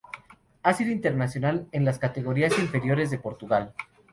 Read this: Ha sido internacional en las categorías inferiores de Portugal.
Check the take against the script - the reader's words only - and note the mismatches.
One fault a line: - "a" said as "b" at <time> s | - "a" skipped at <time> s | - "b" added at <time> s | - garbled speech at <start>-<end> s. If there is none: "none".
none